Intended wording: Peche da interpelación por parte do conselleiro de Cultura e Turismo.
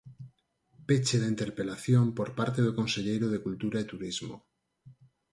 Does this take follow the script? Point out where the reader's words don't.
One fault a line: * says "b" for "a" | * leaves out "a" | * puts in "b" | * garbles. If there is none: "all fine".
all fine